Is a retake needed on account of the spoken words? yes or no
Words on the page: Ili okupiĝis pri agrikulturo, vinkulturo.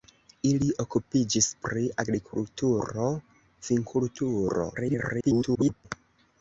yes